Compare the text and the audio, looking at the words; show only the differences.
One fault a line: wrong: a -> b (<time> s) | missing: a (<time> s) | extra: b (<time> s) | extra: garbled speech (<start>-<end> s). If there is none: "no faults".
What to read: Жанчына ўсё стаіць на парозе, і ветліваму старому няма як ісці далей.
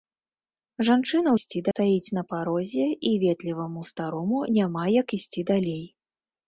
wrong: ўсё -> ісці (1.4 s)